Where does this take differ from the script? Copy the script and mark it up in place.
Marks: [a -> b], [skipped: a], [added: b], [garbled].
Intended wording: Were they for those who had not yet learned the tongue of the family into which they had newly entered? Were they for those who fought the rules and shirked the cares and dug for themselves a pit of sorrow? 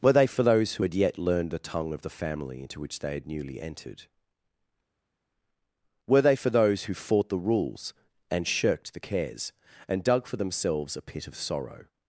Were they for those who had [skipped: not] yet learned the tongue of the family into which they had newly entered? Were they for those who fought the rules and shirked the cares and dug for themselves a pit of sorrow?